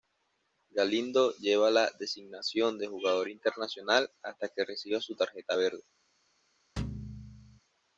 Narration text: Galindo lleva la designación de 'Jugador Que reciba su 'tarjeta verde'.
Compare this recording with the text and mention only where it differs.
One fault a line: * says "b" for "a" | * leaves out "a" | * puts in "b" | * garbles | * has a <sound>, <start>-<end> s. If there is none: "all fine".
* puts in "Internacional hasta"
* has a thud, 6.8-7.6 s